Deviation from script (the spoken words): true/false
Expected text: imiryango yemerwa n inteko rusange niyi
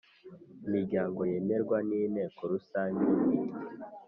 false